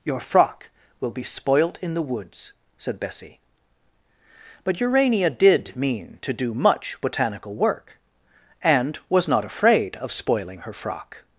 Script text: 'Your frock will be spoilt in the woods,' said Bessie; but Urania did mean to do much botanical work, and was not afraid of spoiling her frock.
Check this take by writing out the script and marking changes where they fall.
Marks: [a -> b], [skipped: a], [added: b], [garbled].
'Your frock will be spoilt in the woods,' said Bessie; but Urania did mean to do much botanical work, and was not afraid of spoiling her frock.